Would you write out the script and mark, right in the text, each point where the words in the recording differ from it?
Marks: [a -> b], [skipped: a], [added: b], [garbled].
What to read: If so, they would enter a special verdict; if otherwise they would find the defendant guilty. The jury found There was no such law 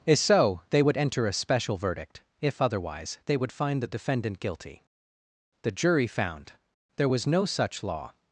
If so, they would enter a special verdict; if otherwise they would find the defendant guilty. The jury found There was no such law